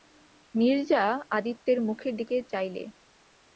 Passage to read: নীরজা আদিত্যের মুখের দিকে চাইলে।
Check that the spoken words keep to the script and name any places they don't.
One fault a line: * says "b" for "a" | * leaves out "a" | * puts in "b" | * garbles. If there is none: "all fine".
all fine